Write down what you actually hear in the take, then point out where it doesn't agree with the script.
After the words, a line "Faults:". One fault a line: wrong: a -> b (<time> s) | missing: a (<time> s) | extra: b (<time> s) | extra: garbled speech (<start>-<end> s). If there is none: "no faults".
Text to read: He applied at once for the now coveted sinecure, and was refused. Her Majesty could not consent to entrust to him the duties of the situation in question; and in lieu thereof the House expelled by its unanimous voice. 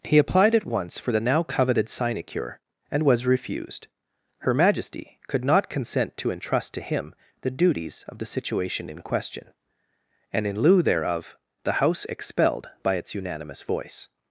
He applied at once for the now coveted sinecure, and was refused. Her Majesty could not consent to entrust to him the duties of the situation in question; and in lieu thereof the House expelled by its unanimous voice.
Faults:
no faults